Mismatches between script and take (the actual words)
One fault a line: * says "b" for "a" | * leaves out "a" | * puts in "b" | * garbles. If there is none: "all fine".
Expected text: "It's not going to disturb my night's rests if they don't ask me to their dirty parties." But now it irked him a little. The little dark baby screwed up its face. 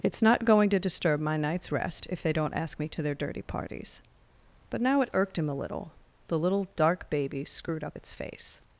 * says "rest" for "rests"